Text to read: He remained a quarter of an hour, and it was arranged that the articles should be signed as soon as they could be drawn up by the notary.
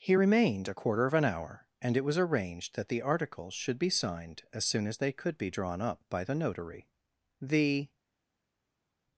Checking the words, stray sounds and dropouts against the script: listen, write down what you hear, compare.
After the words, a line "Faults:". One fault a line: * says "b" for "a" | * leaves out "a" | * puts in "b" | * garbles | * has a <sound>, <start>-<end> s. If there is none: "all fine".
He remained a quarter of an hour, and it was arranged that the articles should be signed as soon as they could be drawn up by the notary. The
Faults:
* puts in "The"